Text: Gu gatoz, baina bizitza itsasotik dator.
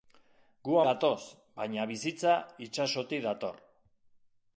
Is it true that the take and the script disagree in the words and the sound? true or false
false